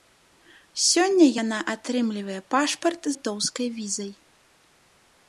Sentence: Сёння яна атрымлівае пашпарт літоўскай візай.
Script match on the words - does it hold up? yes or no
yes